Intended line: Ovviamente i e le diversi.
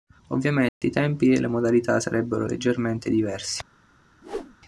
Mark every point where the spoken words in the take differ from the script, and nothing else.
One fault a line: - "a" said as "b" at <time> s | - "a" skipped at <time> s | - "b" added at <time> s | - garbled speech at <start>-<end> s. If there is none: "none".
- "tempi" added at 0.9 s
- "modalità sarebbero leggermente" added at 1.5 s